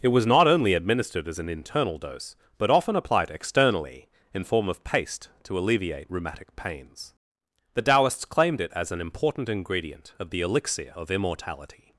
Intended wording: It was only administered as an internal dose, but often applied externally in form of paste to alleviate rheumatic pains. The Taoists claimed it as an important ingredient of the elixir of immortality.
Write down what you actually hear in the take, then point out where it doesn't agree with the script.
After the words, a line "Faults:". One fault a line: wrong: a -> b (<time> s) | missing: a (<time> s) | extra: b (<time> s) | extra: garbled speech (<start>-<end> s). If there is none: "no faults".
It was not only administered as an internal dose, but often applied externally in form of paste to alleviate rheumatic pains. The Taoists claimed it as an important ingredient of the elixir of immortality.
Faults:
extra: not (0.2 s)